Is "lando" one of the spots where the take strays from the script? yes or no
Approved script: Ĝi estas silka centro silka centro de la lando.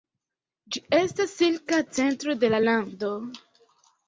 no